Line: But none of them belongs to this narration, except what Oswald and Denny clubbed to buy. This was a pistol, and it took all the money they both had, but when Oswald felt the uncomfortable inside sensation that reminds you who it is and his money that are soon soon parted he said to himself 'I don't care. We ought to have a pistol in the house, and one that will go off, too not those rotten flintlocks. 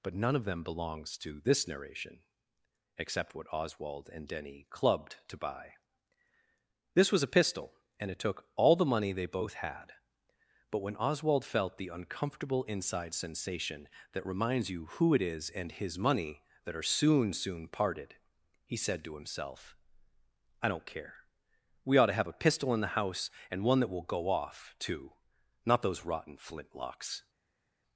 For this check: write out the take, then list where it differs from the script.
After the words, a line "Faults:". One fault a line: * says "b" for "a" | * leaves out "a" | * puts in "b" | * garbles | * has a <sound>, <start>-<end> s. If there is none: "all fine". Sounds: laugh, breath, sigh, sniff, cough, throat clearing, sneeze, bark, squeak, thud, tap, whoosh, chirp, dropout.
But none of them belongs to this narration, except what Oswald and Denny clubbed to buy. This was a pistol, and it took all the money they both had, but when Oswald felt the uncomfortable inside sensation that reminds you who it is and his money that are soon soon parted he said to himself 'I don't care. We ought to have a pistol in the house, and one that will go off, too not those rotten flintlocks.
Faults:
all fine